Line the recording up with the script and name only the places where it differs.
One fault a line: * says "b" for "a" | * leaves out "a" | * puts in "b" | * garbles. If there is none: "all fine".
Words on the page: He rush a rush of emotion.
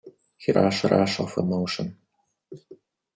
all fine